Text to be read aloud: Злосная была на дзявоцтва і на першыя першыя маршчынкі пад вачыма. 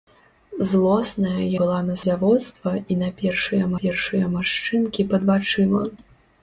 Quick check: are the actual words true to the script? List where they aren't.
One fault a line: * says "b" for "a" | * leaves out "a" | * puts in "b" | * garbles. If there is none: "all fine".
all fine